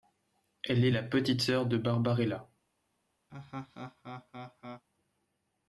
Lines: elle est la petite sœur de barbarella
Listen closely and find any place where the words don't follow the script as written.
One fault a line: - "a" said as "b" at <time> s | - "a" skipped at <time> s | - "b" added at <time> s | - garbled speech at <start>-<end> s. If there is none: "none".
none